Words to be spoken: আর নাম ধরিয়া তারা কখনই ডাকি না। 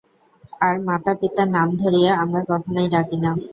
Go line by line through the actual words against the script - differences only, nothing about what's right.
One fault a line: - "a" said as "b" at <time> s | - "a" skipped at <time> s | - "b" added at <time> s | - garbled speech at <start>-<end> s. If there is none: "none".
- "মাতাপিতার" added at 0.9 s
- "তারা" said as "আমরা" at 2.2 s